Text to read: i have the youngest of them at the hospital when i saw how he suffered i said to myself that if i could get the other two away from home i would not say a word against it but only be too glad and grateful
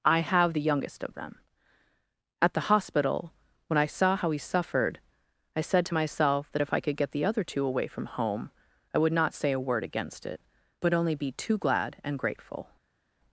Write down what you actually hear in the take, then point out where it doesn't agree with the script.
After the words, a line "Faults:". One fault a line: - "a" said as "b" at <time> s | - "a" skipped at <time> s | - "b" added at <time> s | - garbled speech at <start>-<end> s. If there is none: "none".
i have the youngest of them at the hospital when i saw how he suffered i said to myself that if i could get the other two away from home i would not say a word against it but only be too glad and grateful
Faults:
none